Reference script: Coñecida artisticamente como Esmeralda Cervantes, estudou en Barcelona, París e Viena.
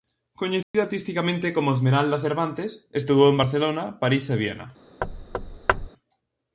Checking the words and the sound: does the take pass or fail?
fail